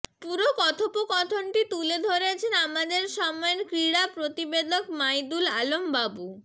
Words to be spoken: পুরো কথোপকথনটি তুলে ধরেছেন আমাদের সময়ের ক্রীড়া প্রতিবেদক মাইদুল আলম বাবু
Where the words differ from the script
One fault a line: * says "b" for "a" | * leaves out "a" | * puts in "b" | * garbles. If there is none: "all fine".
all fine